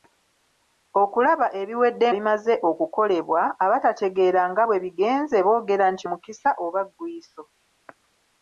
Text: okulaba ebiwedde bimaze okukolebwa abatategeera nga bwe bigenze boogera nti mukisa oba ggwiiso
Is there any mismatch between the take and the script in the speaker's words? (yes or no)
no